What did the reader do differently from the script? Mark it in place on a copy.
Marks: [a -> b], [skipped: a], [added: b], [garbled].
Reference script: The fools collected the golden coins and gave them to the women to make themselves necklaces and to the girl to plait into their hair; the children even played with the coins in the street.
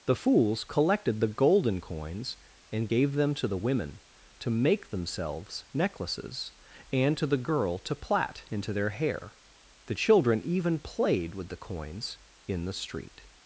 The fools collected the golden coins and gave them to the women to make themselves necklaces and to the girl to plait into their hair; the children even played with the coins in the street.